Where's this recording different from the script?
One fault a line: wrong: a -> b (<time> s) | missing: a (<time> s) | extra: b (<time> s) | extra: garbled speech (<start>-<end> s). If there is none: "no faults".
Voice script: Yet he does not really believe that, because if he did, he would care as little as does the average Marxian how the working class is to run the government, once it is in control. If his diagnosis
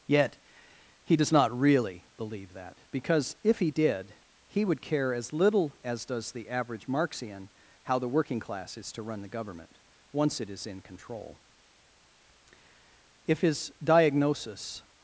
no faults